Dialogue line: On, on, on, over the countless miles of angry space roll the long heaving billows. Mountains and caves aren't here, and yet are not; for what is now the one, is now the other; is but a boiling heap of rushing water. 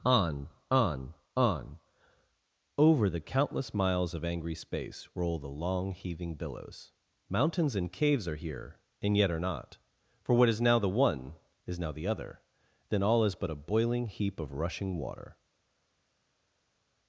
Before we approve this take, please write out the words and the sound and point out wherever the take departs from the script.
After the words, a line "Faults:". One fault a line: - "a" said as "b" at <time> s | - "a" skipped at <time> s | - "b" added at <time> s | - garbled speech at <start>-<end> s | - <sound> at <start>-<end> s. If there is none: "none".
On, on, on, over the countless miles of angry space roll the long heaving billows. Mountains and caves are here, and yet are not; for what is now the one, is now the other; then all is but a boiling heap of rushing water.
Faults:
- "aren't" said as "are" at 8.2 s
- "then all" added at 12.9 s